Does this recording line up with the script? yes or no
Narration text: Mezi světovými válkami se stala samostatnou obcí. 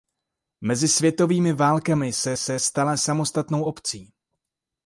no